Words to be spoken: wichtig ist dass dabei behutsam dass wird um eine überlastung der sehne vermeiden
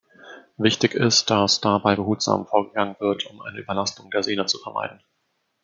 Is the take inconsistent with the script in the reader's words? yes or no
yes